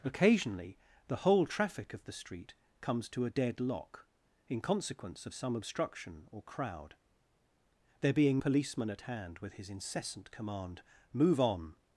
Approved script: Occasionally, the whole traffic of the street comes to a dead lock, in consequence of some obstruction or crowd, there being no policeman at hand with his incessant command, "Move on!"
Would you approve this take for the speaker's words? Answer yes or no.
no